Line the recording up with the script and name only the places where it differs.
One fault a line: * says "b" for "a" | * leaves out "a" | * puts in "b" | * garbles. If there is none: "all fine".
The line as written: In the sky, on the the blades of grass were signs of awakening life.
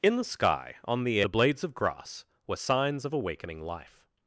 all fine